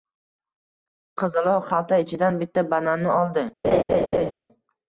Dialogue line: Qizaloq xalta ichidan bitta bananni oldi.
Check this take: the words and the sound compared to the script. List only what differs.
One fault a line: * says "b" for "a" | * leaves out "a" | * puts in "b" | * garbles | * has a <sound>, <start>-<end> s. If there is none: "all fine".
* has a laugh, 3.6-4.3 s